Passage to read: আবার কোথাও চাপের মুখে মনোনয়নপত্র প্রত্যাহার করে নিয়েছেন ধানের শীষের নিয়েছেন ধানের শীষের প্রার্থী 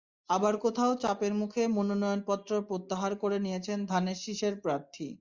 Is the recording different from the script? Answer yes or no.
yes